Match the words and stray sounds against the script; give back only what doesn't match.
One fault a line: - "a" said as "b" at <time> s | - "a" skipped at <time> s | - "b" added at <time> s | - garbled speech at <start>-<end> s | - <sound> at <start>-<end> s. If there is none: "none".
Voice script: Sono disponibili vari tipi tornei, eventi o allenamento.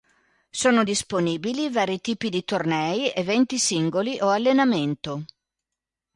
- "di" added at 2.3 s
- "singoli" added at 3.6 s